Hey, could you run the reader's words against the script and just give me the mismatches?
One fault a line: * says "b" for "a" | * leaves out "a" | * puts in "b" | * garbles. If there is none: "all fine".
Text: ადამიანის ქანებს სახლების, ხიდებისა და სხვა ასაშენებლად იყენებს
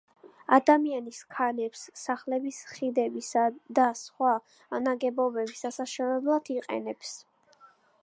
* puts in "ნაგებობების"